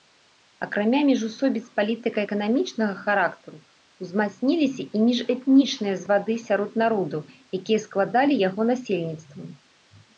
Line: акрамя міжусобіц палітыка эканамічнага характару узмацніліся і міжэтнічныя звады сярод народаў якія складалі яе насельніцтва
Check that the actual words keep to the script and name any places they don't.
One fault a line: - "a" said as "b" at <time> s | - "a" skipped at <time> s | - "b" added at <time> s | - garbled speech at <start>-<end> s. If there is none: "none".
- "яе" said as "яго" at 8.5 s